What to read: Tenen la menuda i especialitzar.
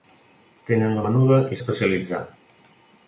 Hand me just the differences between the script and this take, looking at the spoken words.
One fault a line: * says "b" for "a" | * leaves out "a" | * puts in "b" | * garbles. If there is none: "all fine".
all fine